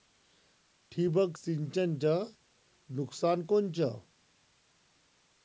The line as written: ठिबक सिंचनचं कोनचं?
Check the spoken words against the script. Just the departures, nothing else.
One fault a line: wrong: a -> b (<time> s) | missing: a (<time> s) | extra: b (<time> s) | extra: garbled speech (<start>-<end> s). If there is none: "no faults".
extra: नुकसान (2.9 s)